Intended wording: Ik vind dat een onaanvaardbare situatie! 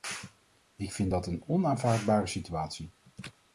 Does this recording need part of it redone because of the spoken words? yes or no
no